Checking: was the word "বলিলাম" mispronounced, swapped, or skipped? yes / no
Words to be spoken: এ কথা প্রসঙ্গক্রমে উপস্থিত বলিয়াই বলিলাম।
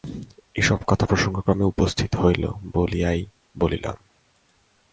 no